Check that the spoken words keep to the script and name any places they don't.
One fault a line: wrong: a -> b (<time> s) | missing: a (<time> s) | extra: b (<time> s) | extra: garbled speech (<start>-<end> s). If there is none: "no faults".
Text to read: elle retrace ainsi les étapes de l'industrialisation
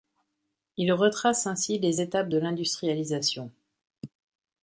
wrong: elle -> il (0.8 s)